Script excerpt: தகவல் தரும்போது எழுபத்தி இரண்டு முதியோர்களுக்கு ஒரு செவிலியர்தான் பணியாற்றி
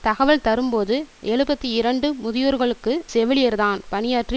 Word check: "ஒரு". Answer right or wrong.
wrong